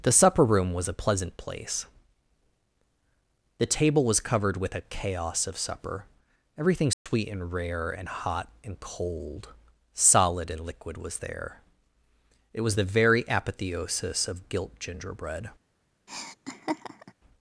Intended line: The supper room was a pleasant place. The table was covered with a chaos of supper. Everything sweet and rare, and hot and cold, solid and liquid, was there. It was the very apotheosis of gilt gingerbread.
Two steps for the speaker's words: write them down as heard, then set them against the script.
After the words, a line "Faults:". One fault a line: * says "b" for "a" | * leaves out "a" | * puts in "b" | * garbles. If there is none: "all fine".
The supper room was a pleasant place. The table was covered with a chaos of supper. Everything sweet and rare, and hot and cold, solid and liquid, was there. It was the very apotheosis of gilt gingerbread.
Faults:
all fine